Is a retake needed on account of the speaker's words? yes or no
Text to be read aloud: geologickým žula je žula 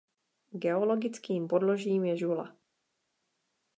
yes